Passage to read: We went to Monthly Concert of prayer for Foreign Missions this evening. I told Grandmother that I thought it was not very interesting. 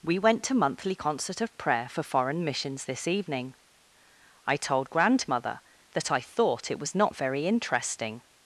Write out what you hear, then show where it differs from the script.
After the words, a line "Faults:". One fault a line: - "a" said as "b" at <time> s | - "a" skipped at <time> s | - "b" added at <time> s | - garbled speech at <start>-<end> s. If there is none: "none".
We went to Monthly Concert of prayer for Foreign Missions this evening. I told Grandmother that I thought it was not very interesting.
Faults:
none